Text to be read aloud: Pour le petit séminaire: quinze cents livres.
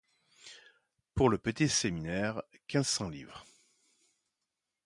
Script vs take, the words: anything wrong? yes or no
no